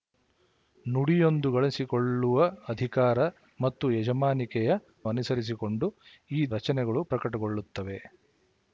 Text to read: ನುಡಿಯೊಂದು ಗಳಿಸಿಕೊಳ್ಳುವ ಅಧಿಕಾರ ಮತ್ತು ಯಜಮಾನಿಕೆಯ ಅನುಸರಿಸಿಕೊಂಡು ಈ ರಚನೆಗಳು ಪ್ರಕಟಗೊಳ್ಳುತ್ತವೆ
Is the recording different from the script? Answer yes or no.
no